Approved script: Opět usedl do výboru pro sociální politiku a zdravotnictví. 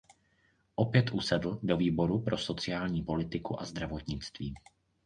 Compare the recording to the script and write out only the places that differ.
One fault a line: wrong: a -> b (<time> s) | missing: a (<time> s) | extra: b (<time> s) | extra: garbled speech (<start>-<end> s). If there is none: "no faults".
no faults